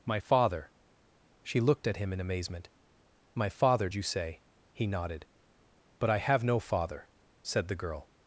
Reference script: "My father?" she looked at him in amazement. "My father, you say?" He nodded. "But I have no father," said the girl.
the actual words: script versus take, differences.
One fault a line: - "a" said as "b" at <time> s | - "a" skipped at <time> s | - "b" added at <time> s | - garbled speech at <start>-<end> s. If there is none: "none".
none